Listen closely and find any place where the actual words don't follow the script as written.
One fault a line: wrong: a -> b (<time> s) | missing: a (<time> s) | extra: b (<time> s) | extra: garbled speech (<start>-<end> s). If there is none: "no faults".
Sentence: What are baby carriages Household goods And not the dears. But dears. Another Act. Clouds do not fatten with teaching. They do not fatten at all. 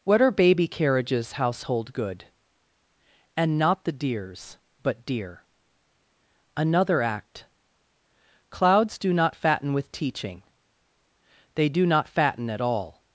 wrong: goods -> good (1.9 s)
wrong: dears -> dear (5.1 s)